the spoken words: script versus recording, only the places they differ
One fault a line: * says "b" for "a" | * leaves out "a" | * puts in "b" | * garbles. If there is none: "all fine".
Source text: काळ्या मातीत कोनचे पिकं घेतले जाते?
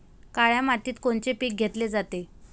all fine